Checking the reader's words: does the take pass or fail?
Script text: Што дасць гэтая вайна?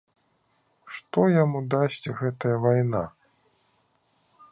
fail